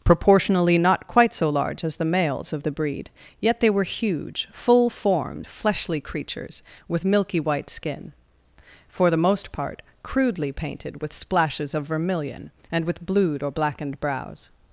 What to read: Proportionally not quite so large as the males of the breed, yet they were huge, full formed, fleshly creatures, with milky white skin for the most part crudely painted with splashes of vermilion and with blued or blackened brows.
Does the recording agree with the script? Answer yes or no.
yes